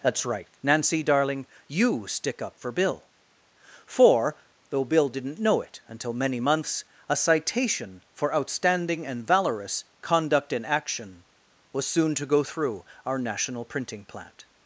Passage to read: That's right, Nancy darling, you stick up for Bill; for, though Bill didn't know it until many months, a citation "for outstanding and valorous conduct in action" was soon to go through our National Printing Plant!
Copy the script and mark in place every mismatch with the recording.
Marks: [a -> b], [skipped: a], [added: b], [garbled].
That's right, Nancy darling, you stick up for Bill; for, though Bill didn't know it until many months, a citation "for outstanding and valorous conduct in action" was soon to go through our National Printing Plant!